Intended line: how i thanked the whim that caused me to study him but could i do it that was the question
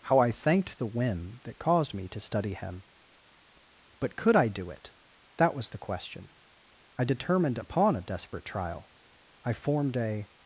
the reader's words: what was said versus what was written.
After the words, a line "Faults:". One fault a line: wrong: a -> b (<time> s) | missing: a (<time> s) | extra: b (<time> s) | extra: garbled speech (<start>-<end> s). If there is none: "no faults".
how i thanked the whim that caused me to study him but could i do it that was the question i determined upon a desperate trial i formed a
Faults:
extra: i determined upon a desperate trial i formed a (7.0 s)